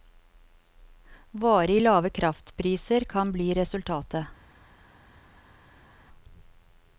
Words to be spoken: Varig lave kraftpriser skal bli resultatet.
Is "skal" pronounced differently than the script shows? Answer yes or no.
yes